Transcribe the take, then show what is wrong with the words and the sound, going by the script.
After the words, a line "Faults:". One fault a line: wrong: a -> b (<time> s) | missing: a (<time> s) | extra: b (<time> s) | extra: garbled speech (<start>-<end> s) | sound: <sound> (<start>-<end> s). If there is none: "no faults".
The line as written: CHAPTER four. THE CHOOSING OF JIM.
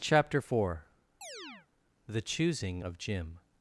CHAPTER four. THE CHOOSING OF JIM.
Faults:
sound: chirp (1.2-1.7 s)